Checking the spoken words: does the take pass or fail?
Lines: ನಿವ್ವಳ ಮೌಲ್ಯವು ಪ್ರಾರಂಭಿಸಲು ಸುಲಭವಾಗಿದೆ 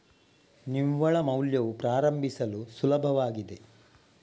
pass